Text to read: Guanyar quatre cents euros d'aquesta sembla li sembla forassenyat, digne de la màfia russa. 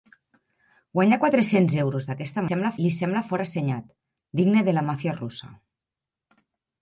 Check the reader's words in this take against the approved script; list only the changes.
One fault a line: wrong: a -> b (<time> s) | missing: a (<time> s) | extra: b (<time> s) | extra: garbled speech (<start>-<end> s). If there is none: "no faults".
no faults